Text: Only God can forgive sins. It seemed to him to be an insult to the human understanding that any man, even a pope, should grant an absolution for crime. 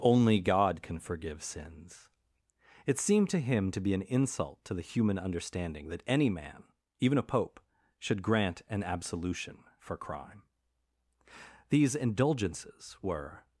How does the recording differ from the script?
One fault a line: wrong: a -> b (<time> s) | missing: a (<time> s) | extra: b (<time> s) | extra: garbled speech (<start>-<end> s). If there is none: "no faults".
extra: These indulgences were (11.7 s)